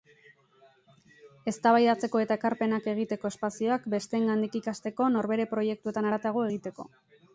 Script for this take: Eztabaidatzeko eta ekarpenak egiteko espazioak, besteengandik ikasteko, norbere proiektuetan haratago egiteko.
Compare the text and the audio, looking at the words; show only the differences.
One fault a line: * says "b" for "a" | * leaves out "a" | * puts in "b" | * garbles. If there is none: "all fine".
all fine